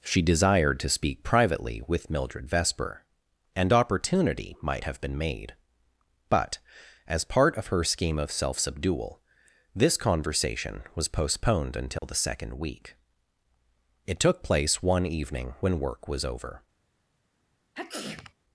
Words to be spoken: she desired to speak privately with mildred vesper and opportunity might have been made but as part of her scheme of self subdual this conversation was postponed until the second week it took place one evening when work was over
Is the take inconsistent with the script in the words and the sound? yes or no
yes